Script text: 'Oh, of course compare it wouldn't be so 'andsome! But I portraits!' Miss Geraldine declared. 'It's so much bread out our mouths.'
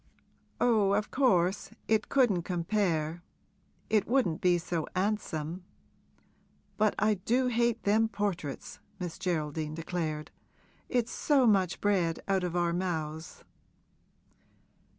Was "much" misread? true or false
false